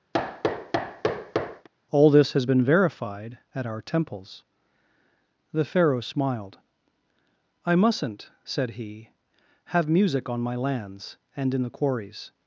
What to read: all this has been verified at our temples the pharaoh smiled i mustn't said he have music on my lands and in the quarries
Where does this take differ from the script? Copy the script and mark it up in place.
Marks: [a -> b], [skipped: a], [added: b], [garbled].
all this has been verified at our temples the pharaoh smiled i mustn't said he have music on my lands and in the quarries